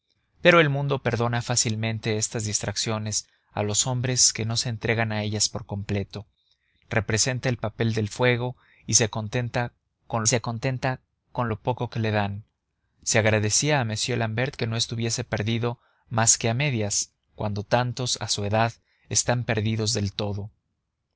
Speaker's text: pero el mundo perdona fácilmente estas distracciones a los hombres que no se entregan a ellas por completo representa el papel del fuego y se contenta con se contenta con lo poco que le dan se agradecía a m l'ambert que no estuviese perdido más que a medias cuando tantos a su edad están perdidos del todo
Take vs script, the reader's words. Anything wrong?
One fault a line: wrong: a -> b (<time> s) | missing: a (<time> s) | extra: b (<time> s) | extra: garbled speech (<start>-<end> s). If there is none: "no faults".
no faults